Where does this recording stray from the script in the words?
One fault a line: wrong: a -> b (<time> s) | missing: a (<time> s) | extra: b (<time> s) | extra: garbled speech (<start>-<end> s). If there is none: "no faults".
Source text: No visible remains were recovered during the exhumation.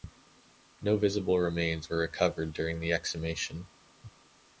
no faults